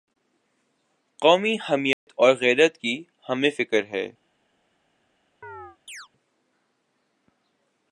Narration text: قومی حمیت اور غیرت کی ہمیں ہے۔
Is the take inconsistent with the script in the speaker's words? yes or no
yes